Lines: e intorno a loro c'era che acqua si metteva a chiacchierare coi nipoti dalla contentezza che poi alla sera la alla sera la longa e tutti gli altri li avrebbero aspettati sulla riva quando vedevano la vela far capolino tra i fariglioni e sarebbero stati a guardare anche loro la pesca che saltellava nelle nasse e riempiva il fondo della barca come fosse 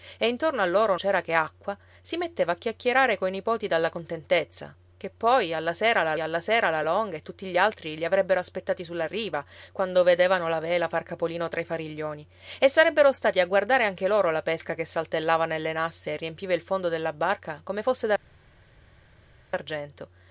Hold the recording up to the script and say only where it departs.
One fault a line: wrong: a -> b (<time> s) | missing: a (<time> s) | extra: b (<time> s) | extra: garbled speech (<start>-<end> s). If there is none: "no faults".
no faults